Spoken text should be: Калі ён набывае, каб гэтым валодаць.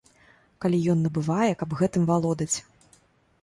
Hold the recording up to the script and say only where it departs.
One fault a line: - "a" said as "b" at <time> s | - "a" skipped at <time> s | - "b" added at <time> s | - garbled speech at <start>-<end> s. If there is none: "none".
none